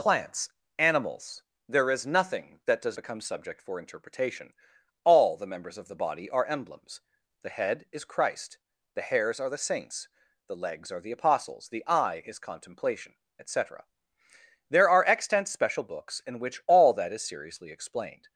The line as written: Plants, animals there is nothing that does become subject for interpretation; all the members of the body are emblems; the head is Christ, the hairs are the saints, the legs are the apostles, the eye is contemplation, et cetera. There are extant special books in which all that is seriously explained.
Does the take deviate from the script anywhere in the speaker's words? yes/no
no